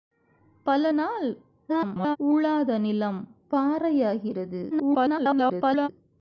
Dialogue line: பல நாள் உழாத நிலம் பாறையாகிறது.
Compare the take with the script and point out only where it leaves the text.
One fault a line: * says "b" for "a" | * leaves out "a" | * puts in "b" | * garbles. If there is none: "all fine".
* garbles
* garbles